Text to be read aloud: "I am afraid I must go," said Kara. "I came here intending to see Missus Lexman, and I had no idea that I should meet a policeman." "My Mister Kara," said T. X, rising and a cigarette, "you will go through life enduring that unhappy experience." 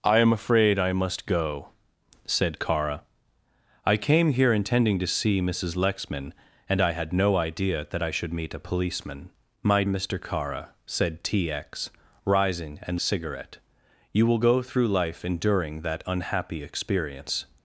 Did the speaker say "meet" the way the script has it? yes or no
yes